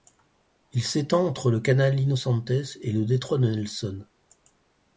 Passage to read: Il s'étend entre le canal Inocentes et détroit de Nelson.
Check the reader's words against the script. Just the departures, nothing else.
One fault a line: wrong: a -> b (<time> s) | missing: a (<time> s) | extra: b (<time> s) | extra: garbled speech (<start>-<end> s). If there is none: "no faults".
extra: le (2.9 s)